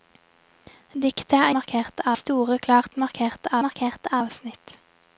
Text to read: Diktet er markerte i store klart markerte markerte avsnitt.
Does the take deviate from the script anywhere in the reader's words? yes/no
no